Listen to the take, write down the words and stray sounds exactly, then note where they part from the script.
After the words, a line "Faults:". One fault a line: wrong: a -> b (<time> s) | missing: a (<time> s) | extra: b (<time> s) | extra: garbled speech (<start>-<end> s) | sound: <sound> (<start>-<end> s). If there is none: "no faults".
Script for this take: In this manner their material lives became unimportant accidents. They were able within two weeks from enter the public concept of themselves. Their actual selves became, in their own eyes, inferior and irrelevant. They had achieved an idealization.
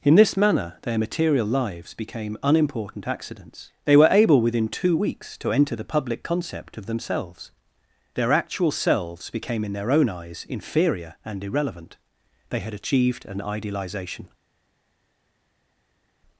In this manner their material lives became unimportant accidents. They were able within two weeks to enter the public concept of themselves. Their actual selves became, in their own eyes, inferior and irrelevant. They had achieved an idealization.
Faults:
wrong: from -> to (5.4 s)